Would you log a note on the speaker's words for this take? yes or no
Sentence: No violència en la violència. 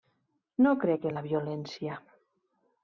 yes